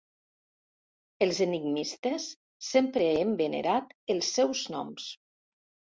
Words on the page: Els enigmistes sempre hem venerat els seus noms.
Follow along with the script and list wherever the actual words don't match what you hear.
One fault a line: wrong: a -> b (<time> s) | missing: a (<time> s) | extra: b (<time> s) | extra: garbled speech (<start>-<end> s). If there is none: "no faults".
no faults